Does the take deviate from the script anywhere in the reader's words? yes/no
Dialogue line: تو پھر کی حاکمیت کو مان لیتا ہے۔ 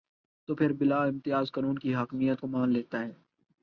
yes